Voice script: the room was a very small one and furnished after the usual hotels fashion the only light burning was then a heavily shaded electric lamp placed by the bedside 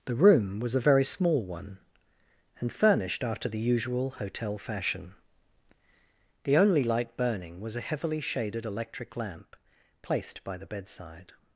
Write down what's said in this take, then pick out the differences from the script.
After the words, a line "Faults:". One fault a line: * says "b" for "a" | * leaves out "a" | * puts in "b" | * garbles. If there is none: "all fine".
the room was a very small one and furnished after the usual hotel fashion the only light burning was a heavily shaded electric lamp placed by the bedside
Faults:
* says "hotel" for "hotels"
* leaves out "then"